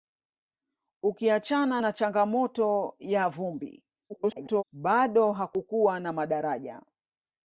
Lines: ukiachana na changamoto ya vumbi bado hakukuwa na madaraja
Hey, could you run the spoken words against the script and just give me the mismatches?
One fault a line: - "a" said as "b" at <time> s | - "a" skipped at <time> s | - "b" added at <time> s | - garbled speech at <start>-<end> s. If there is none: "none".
- garbled speech at 4.1-4.6 s